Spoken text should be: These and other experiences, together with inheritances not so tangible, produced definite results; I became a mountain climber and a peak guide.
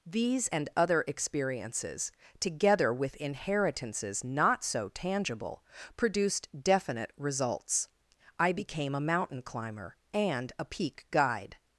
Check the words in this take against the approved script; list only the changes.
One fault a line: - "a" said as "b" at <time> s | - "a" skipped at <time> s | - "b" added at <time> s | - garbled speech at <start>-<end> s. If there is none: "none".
none